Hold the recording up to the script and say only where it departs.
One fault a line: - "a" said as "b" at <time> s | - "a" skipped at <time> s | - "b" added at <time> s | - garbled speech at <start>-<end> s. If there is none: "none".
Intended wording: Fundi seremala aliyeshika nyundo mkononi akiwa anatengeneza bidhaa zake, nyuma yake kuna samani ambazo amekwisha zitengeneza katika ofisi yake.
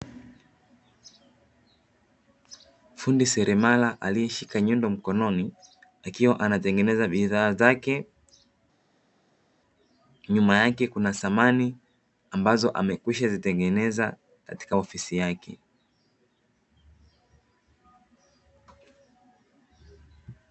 none